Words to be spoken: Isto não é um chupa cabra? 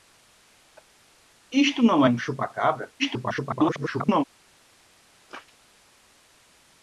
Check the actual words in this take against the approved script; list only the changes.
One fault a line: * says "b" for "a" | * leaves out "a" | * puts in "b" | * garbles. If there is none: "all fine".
* leaves out "é"
* garbles